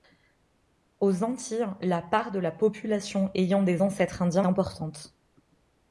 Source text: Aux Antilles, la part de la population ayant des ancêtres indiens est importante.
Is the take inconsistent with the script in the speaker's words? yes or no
yes